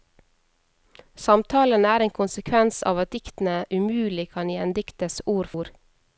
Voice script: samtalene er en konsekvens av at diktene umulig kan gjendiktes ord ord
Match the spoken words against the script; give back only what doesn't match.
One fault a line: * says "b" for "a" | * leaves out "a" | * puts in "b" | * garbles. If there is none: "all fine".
all fine